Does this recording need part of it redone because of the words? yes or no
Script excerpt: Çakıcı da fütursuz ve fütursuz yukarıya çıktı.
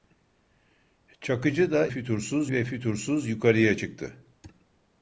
no